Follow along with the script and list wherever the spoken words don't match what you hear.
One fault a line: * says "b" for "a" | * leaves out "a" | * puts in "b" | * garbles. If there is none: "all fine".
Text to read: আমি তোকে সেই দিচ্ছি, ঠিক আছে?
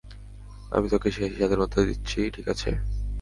* puts in "স্বাধীনতা"